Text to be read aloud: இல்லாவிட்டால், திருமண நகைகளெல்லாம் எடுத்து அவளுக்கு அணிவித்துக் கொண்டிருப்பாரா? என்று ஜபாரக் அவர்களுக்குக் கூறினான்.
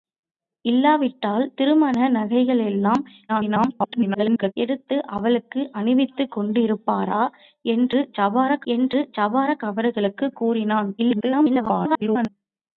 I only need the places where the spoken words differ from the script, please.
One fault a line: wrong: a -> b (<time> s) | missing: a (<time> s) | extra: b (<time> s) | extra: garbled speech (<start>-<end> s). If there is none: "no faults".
extra: garbled speech (3.3-4.5 s)
extra: என்று ஜபாரக் (8.7 s)
extra: garbled speech (11.0-12.3 s)